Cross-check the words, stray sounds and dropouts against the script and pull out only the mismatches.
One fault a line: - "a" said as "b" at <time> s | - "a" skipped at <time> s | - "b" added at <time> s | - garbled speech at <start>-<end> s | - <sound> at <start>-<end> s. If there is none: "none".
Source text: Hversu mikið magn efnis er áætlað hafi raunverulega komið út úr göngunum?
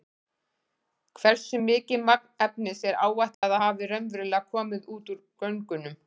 - dropout at 3.3-3.4 s